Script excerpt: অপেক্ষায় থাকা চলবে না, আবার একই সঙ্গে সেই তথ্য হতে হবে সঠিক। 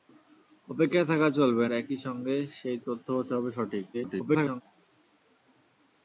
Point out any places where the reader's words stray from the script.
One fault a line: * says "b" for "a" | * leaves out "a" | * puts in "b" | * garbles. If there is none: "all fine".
* leaves out "না আবার"
* garbles